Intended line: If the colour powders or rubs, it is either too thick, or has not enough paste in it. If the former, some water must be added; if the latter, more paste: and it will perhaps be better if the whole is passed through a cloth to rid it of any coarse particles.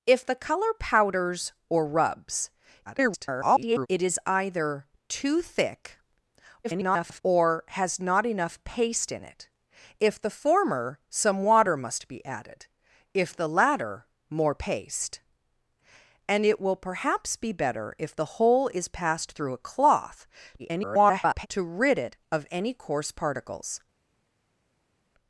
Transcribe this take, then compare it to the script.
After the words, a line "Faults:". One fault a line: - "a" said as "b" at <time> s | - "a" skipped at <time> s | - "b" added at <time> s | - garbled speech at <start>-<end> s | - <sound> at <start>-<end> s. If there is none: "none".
If the colour powders or rubs, [garbled] it is either too thick, [garbled] or has not enough paste in it. If the former, some water must be added; if the latter, more paste: and it will perhaps be better if the whole is passed through a cloth [garbled] to rid it of any coarse particles.
Faults:
- garbled speech at 2.9-3.9 s
- garbled speech at 6.6-7.2 s
- garbled speech at 20.6-21.5 s